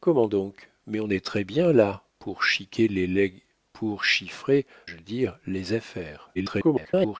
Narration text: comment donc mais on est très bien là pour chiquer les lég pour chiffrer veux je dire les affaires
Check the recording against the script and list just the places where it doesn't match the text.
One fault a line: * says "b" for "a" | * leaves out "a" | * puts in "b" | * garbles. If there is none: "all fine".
* leaves out "veux"
* garbles